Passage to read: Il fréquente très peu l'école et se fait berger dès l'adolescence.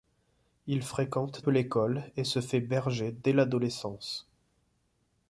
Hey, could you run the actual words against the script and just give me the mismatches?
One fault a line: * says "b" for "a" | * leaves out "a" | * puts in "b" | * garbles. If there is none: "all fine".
* leaves out "très"